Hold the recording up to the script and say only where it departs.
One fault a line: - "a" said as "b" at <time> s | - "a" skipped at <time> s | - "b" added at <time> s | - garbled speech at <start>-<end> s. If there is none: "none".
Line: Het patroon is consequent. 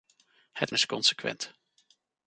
- "patroon" skipped at 0.7 s